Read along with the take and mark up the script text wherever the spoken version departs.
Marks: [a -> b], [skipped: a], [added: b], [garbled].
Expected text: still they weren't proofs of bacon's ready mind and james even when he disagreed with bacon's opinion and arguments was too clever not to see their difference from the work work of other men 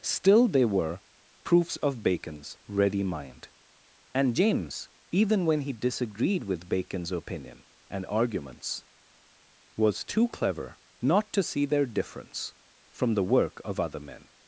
still they [weren't -> were] proofs of bacon's ready mind and james even when he disagreed with bacon's opinion and arguments was too clever not to see their difference from the work [skipped: work] of other men